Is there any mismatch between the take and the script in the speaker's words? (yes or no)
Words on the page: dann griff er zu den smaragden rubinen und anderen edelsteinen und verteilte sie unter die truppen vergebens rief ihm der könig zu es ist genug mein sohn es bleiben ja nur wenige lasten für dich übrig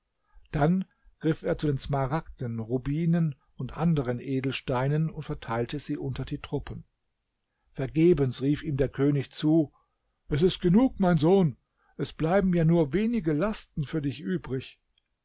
no